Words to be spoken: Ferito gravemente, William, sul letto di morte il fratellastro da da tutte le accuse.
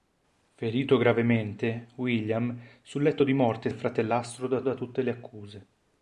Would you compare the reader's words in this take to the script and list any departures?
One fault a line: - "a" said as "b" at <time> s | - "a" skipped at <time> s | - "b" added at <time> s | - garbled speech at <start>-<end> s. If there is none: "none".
none